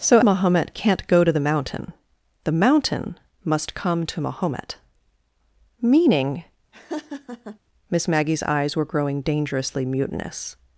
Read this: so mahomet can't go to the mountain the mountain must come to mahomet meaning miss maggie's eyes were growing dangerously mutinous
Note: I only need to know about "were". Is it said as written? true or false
true